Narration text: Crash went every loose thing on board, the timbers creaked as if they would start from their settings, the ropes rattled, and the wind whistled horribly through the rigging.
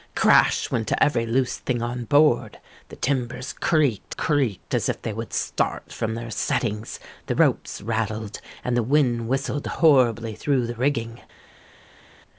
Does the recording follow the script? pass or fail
fail